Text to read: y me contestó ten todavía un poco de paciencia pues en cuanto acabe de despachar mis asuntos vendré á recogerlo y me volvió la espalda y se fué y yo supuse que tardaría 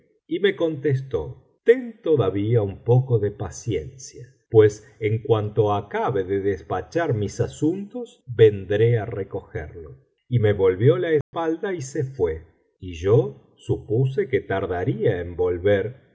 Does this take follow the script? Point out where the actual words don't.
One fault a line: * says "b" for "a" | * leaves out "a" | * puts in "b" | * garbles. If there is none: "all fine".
all fine